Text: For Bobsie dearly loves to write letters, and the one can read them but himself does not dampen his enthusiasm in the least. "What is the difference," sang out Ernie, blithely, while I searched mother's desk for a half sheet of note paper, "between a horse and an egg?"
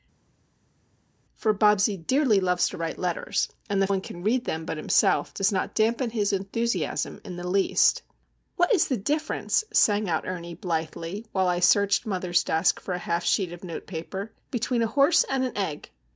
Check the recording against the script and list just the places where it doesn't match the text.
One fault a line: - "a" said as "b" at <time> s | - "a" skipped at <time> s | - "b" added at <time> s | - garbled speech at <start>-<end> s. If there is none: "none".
none